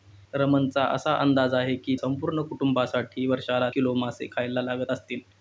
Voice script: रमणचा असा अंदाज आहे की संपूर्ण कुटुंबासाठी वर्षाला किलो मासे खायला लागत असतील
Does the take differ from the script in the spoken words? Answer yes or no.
no